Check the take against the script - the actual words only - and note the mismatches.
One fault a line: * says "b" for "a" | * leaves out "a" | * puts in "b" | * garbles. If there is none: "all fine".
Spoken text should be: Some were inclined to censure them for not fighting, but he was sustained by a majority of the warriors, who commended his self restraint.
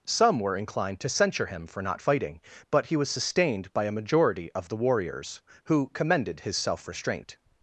* says "him" for "them"